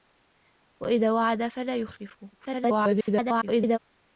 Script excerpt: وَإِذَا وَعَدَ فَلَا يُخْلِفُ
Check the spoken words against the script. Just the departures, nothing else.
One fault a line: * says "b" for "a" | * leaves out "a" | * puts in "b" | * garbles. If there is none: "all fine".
* garbles